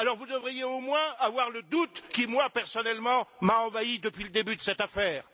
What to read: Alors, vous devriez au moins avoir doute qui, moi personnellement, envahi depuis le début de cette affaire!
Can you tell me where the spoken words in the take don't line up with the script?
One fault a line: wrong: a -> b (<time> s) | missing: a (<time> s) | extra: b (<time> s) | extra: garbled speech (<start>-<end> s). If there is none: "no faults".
extra: le (1.5 s)
extra: m'a (3.4 s)